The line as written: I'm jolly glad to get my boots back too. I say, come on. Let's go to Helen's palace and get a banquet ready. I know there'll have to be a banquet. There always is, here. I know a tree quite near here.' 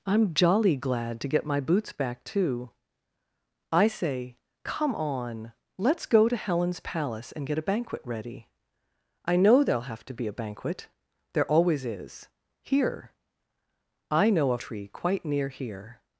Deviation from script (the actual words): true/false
false